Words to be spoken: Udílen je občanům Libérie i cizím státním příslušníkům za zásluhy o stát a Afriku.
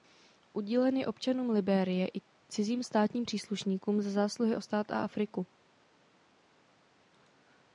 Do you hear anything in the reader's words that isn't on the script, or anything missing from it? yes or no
no